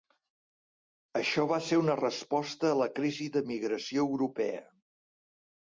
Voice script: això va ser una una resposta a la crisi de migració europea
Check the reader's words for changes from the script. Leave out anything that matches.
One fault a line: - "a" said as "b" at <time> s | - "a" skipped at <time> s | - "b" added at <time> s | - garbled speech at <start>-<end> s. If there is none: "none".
- "una" skipped at 2.0 s